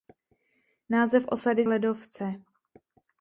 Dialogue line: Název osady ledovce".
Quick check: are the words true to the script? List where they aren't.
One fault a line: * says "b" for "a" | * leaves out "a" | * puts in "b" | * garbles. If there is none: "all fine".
all fine